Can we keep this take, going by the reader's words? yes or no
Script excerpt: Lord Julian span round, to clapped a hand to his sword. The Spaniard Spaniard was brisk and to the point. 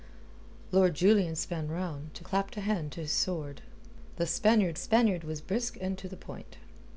yes